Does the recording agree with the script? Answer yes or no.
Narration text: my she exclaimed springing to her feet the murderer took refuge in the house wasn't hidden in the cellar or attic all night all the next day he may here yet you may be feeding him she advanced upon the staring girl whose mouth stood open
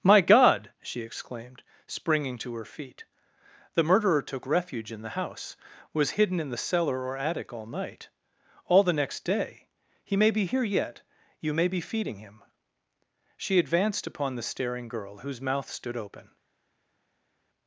no